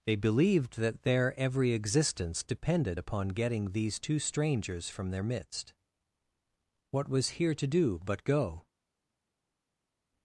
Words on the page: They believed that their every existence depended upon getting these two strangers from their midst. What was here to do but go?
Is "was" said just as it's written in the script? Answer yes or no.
yes